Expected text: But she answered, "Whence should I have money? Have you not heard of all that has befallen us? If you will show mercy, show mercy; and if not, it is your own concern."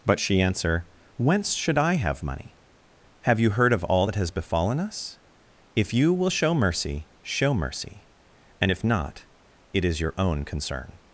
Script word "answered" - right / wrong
wrong